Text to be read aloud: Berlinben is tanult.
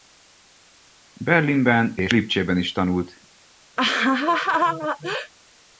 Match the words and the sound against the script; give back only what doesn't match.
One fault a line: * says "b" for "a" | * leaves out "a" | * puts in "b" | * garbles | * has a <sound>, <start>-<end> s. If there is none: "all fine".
* puts in "és Lipcsében"
* has a laugh, 3.8-5.3 s